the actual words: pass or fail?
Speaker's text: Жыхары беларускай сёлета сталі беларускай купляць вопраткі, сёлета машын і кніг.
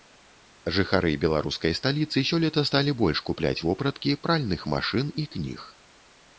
fail